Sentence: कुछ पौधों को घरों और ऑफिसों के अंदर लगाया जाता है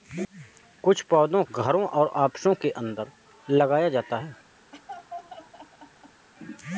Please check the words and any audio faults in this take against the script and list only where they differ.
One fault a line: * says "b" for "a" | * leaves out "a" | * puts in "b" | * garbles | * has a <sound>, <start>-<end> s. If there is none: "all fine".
* leaves out "को"
* has a laugh, 4.7-6.3 s